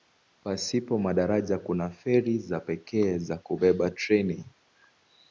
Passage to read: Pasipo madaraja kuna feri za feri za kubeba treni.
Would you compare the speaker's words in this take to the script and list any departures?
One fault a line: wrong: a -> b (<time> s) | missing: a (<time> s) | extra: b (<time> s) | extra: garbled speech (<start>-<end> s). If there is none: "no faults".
wrong: feri -> pekee (2.6 s)